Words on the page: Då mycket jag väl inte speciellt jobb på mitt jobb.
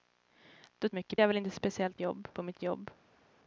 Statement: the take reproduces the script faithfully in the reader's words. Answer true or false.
true